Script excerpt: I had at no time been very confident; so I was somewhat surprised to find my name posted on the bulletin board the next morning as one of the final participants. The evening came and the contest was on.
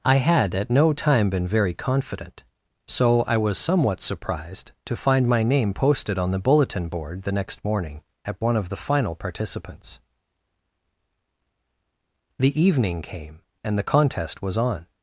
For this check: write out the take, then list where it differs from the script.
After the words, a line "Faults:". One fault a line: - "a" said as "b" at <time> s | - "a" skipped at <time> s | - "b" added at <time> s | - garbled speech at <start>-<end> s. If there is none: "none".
I had at no time been very confident; so I was somewhat surprised to find my name posted on the bulletin board the next morning at one of the final participants. The evening came and the contest was on.
Faults:
- "as" said as "at" at 8.2 s